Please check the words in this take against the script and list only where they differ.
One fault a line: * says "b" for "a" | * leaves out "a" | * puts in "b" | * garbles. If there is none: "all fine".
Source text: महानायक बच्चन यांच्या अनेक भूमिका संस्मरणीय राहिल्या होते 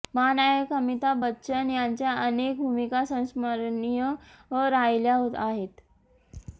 * puts in "अमिताभ"
* says "आहेत" for "होते"